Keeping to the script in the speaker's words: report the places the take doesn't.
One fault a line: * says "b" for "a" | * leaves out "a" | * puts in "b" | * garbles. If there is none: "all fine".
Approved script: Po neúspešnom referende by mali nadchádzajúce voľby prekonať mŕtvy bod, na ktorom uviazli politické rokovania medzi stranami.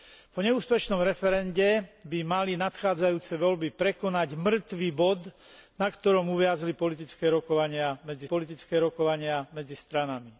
* puts in "politické rokovania medzi"